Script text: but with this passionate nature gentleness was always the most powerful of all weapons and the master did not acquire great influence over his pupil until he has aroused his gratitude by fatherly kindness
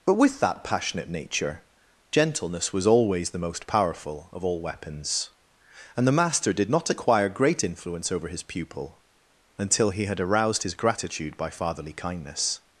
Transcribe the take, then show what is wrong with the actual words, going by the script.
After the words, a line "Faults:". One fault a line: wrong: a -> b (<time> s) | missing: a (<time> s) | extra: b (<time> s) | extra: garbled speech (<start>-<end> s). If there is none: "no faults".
but with that passionate nature gentleness was always the most powerful of all weapons and the master did not acquire great influence over his pupil until he had aroused his gratitude by fatherly kindness
Faults:
wrong: this -> that (0.4 s)
wrong: has -> had (10.1 s)